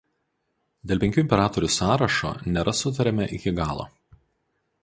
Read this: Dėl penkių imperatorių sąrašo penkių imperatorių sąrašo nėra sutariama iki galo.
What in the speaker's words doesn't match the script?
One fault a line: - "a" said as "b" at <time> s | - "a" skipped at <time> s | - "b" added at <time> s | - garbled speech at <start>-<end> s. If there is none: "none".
- "penkių imperatorių sąrašo" skipped at 2.3 s